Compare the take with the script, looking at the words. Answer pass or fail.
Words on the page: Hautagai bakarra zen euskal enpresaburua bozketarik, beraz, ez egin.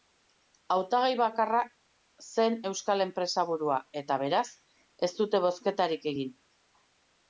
fail